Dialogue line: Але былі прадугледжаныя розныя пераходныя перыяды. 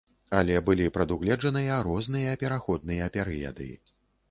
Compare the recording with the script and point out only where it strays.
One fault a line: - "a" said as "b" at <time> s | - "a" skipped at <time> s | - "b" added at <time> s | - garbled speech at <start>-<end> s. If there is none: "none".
none